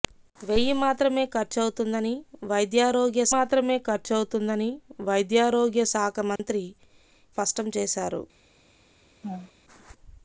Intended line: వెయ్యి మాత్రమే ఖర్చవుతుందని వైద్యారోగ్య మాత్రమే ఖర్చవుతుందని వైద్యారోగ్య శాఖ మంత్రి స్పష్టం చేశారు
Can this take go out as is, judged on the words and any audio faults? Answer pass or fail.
fail